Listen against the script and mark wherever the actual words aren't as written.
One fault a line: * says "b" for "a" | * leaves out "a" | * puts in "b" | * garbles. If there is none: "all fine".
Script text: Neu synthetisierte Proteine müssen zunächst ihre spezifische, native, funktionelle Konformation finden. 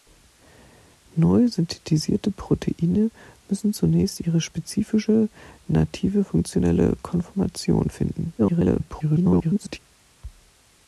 * garbles